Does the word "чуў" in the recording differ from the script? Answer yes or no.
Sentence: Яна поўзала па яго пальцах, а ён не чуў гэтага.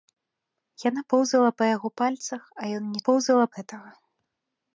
yes